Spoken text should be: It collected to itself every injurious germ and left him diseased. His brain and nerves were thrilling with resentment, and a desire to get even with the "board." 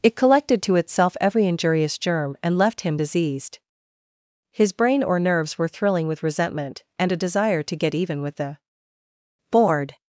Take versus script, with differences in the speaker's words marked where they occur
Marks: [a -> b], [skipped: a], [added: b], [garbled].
It collected to itself every injurious germ and left him diseased. His brain [and -> or] nerves were thrilling with resentment, and a desire to get even with the "board."